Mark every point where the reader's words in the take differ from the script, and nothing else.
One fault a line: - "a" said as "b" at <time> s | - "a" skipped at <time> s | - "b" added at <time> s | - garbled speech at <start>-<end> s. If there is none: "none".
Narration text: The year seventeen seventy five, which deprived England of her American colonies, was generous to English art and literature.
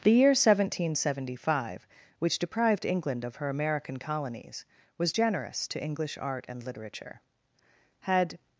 - "Had" added at 8.0 s